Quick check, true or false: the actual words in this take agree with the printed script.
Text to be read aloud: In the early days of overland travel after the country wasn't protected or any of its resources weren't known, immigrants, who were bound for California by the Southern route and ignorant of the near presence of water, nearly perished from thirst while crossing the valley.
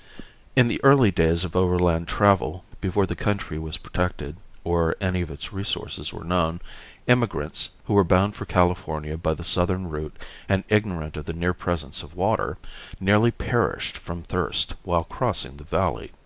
false